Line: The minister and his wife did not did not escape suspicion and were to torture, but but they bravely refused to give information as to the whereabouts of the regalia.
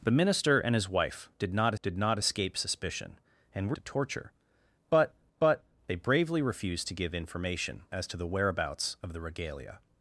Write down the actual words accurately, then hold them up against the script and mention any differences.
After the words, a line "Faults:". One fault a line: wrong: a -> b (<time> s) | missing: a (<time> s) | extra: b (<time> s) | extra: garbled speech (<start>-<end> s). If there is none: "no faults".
The minister and his wife did not did not escape suspicion and were to torture, but but they bravely refused to give information as to the whereabouts of the regalia.
Faults:
no faults